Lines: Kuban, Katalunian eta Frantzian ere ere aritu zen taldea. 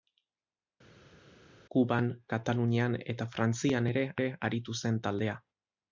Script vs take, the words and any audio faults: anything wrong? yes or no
no